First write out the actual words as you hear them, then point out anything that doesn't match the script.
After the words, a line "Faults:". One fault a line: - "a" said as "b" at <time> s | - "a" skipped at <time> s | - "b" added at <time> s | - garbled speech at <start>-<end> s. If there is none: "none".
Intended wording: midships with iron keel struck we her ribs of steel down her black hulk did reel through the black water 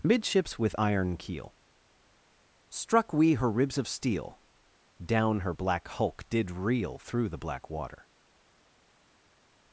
midships with iron keel struck we her ribs of steel down her black hulk did reel through the black water
Faults:
none